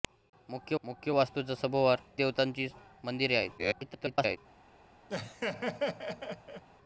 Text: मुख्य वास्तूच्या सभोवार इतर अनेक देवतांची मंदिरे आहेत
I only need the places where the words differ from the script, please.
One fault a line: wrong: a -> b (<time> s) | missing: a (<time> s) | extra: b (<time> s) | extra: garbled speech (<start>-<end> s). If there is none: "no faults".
extra: मुख्य (0.8 s)
missing: इतर अनेक (2.0 s)
extra: garbled speech (3.6-4.4 s)